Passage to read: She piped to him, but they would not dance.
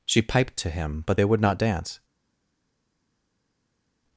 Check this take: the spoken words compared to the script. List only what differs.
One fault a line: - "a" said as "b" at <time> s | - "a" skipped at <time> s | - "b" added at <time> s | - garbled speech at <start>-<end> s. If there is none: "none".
none